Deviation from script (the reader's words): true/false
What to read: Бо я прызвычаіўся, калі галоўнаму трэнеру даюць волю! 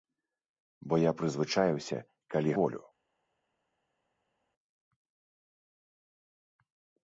true